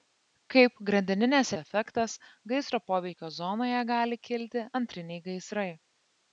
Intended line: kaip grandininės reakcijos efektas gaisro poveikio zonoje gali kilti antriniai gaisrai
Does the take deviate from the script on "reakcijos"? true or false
true